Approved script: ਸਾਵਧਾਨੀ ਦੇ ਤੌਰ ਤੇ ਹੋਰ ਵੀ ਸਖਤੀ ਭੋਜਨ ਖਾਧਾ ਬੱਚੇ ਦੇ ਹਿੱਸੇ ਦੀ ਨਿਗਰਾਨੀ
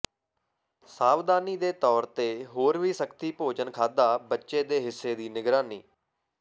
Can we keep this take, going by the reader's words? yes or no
yes